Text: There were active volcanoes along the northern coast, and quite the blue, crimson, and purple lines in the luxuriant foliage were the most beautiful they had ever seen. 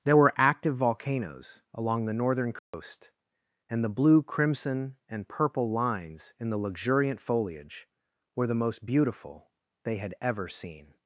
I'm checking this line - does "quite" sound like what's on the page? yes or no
no